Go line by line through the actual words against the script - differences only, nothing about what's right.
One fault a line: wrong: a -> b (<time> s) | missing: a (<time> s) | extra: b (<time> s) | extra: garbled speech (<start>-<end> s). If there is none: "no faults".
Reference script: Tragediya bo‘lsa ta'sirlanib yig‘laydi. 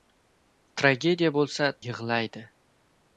missing: ta'sirlanib (1.7 s)